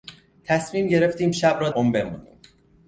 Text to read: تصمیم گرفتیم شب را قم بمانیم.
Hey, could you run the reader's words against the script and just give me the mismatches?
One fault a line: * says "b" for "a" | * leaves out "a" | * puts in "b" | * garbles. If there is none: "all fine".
all fine